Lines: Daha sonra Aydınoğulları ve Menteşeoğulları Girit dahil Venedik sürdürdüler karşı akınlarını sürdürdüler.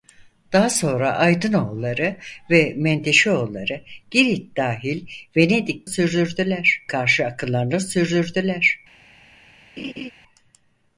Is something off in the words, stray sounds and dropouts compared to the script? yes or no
yes